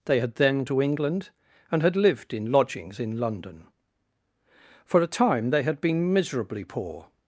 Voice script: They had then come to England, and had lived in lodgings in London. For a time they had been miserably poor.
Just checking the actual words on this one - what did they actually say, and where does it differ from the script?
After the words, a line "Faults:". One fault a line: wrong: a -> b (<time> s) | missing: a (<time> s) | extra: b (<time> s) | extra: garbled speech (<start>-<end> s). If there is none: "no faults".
They had then to England, and had lived in lodgings in London. For a time they had been miserably poor.
Faults:
missing: come (0.7 s)